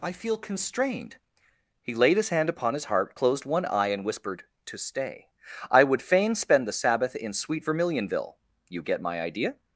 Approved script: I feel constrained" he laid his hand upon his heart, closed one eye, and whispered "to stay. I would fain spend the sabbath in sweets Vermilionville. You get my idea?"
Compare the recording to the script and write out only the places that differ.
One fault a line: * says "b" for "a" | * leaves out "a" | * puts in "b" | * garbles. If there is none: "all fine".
* says "sweet" for "sweets"